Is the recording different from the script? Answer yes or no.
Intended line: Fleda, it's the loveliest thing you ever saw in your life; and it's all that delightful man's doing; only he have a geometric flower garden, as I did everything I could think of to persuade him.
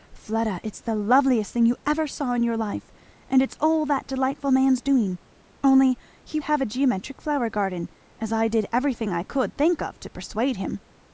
no